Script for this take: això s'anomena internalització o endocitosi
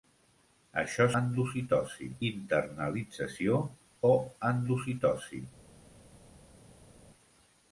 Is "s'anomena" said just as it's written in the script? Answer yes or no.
no